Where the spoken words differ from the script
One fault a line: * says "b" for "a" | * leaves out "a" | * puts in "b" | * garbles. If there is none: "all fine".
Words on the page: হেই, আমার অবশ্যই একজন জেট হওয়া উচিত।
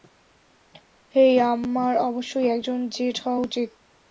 all fine